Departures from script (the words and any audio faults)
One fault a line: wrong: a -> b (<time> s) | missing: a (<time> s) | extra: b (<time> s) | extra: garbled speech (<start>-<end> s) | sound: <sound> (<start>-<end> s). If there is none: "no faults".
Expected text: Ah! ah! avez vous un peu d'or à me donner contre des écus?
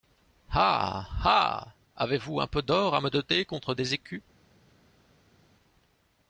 no faults